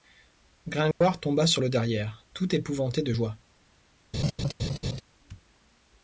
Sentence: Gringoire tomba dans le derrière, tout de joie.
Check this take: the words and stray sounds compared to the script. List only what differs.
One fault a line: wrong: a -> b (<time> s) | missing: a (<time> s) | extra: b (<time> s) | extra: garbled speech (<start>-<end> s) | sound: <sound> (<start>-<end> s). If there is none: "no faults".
sound: dropout (0.9-1.0 s)
wrong: dans -> sur (1.4 s)
extra: épouvanté (2.5 s)
sound: laugh (4.1-5.0 s)